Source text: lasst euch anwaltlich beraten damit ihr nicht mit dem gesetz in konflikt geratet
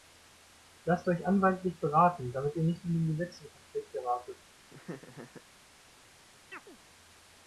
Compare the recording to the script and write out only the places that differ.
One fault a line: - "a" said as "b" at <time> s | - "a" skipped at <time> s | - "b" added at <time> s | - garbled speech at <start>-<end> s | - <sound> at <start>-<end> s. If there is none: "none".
- laugh at 4.7-5.4 s
- chirp at 6.5-6.8 s